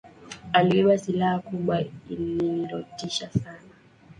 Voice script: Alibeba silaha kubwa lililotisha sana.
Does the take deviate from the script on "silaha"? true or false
false